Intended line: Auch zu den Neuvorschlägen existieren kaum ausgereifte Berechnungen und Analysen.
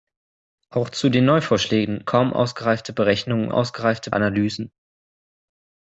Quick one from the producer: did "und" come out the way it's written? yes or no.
no